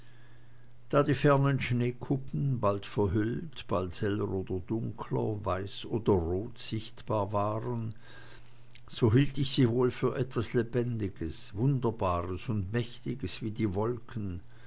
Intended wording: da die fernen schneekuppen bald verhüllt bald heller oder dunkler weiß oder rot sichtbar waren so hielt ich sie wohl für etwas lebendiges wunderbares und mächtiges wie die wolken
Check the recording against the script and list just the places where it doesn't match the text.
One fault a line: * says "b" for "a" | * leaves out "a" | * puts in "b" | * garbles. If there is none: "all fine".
all fine